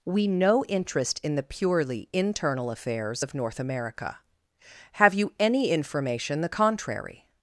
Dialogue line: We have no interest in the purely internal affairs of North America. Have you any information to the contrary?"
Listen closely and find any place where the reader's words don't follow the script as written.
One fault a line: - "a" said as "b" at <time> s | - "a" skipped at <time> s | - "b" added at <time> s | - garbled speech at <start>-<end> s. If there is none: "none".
- "have" skipped at 0.3 s
- "to" skipped at 6.4 s